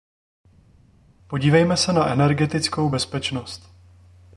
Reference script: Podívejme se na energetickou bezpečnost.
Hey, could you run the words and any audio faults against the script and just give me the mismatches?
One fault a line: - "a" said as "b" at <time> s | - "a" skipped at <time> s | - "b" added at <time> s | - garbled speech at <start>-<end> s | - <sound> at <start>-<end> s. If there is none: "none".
none